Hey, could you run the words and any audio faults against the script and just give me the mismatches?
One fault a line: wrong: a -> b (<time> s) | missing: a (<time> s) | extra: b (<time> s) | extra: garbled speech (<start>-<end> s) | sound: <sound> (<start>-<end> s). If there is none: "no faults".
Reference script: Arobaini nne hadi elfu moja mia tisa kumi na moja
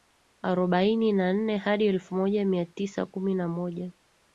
extra: na (1.1 s)